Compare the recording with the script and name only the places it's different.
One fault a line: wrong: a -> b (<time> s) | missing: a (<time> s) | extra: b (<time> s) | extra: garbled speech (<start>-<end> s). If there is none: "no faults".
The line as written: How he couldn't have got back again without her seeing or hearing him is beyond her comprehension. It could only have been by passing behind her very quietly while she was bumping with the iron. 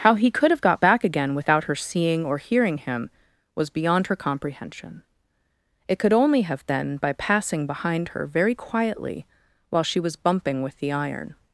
wrong: couldn't -> could (0.3 s)
wrong: is -> was (3.5 s)